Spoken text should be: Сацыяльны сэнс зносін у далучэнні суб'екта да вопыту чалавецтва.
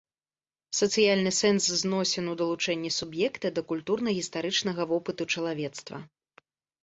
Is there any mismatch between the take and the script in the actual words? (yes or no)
yes